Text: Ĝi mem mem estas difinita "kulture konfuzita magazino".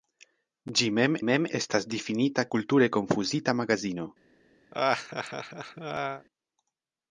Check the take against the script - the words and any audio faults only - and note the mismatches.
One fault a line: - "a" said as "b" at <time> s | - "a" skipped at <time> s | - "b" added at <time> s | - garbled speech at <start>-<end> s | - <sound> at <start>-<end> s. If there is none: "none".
- laugh at 4.7-6.3 s